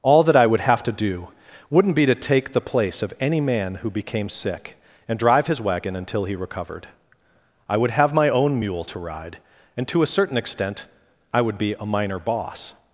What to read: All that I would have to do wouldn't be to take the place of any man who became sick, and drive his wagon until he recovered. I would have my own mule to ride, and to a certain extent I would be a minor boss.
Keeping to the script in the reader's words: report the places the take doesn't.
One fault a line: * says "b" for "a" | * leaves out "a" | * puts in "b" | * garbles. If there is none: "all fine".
all fine